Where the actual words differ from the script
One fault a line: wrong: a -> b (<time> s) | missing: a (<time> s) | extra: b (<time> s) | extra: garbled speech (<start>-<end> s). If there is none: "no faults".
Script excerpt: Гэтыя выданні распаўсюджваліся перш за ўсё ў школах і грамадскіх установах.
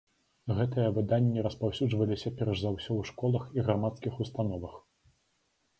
no faults